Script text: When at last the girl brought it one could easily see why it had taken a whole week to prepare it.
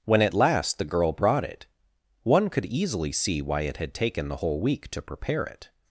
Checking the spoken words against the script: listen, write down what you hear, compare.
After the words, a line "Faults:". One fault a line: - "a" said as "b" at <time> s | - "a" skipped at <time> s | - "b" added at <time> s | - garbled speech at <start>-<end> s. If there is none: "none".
When at last the girl brought it one could easily see why it had taken the whole week to prepare it.
Faults:
- "a" said as "the" at 4.3 s